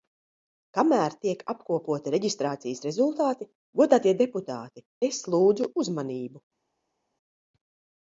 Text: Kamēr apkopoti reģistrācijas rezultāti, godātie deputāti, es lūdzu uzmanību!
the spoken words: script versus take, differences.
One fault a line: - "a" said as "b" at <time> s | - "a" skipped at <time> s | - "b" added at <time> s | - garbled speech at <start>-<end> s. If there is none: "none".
- "tiek" added at 1.2 s